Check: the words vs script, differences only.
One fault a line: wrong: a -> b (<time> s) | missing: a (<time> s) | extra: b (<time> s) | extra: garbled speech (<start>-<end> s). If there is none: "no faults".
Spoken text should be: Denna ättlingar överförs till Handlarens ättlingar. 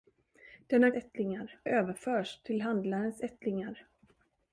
no faults